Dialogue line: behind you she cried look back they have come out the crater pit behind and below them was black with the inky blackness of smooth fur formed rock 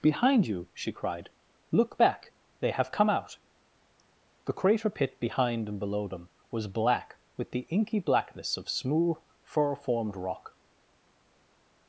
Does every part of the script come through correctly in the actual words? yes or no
yes